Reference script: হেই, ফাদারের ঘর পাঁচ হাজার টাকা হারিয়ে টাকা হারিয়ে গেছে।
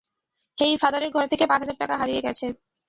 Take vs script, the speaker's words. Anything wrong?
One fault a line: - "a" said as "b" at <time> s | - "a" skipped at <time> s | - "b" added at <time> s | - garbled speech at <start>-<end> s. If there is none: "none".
- "থেকে" added at 1.3 s
- "টাকা হারিয়ে" skipped at 2.2 s